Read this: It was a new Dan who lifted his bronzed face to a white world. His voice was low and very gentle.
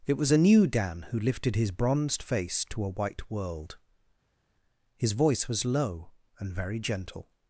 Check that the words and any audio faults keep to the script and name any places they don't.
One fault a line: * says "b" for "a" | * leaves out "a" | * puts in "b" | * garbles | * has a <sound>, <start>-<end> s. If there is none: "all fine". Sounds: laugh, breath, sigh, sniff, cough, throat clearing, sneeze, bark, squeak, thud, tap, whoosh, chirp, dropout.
all fine